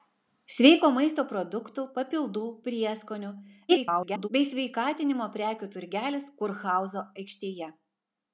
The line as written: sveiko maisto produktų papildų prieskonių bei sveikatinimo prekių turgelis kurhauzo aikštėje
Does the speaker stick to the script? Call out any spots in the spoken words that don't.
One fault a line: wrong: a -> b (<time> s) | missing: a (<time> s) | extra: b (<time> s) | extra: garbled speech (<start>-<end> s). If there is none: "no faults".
extra: garbled speech (3.7-4.3 s)